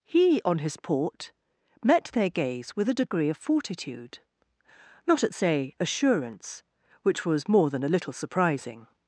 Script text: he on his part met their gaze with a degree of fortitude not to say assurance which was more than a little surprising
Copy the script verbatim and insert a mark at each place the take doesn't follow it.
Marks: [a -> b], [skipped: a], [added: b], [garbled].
he on his [part -> port] met their gaze with a degree of fortitude not [to -> at] say assurance which was more than a little surprising